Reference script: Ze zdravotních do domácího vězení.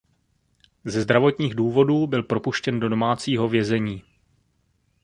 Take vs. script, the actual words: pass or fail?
fail